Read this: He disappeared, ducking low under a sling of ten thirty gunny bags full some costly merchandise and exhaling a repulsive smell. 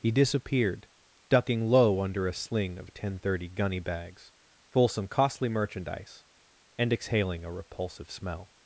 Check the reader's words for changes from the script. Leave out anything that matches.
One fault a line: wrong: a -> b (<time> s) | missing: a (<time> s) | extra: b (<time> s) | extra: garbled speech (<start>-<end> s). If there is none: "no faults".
no faults